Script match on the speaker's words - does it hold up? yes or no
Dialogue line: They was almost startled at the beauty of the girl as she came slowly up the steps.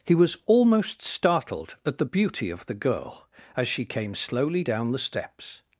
no